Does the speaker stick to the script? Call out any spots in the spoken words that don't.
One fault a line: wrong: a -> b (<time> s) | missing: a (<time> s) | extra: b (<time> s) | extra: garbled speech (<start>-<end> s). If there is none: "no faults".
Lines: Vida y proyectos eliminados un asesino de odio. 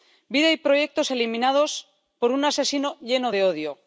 extra: por (2.2 s)
extra: lleno (3.0 s)